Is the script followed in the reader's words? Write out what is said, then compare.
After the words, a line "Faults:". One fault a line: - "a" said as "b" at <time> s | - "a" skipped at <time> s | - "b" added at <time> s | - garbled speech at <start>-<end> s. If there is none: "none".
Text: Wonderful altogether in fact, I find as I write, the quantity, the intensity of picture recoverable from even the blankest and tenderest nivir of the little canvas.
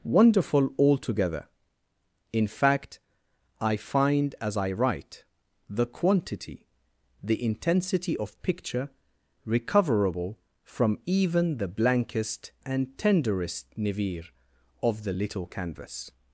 Wonderful altogether in fact, I find as I write, the quantity, the intensity of picture recoverable from even the blankest and tenderest nivir of the little canvas.
Faults:
none